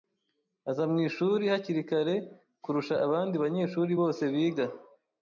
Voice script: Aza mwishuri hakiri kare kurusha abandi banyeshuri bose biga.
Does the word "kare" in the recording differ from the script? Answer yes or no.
no